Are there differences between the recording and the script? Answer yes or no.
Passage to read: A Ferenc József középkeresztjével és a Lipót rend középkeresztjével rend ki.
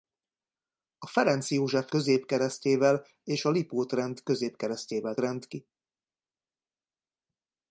no